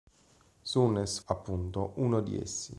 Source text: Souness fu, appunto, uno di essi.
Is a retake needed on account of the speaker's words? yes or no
yes